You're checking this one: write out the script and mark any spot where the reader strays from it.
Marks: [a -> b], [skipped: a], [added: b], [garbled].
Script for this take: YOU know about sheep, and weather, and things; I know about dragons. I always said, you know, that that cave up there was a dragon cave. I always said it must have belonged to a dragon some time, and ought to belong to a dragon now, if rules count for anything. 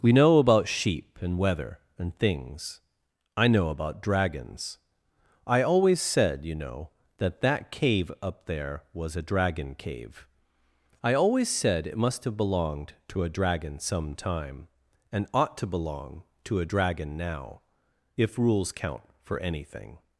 [YOU -> We] know about sheep, and weather, and things; I know about dragons. I always said, you know, that that cave up there was a dragon cave. I always said it must have belonged to a dragon some time, and ought to belong to a dragon now, if rules count for anything.